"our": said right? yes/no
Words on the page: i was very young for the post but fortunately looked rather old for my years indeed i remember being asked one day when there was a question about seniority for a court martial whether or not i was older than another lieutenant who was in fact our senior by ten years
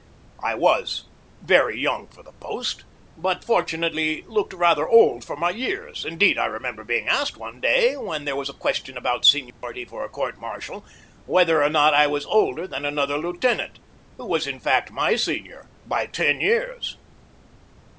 no